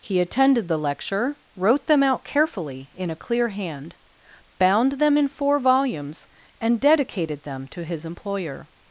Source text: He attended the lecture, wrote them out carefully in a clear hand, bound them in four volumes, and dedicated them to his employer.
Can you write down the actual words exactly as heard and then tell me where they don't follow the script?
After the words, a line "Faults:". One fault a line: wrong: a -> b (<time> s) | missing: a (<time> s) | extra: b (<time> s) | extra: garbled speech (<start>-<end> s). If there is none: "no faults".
He attended the lecture, wrote them out carefully in a clear hand, bound them in four volumes, and dedicated them to his employer.
Faults:
no faults